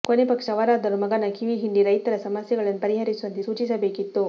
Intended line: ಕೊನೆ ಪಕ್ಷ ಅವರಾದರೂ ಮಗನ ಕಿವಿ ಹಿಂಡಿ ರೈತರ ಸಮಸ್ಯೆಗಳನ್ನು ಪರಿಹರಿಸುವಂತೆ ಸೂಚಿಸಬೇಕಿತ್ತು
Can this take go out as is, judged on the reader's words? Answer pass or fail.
pass